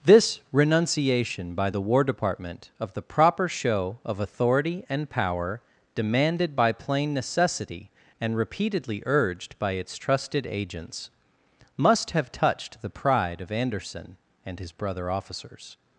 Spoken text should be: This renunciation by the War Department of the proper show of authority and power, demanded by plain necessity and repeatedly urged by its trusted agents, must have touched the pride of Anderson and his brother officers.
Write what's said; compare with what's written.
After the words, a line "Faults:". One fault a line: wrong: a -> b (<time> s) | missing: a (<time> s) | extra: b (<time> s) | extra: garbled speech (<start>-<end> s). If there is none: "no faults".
This renunciation by the War Department of the proper show of authority and power, demanded by plain necessity and repeatedly urged by its trusted agents, must have touched the pride of Anderson and his brother officers.
Faults:
no faults